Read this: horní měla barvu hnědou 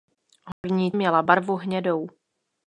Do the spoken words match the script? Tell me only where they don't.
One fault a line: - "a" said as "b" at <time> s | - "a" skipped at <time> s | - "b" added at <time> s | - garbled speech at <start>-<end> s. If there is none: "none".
none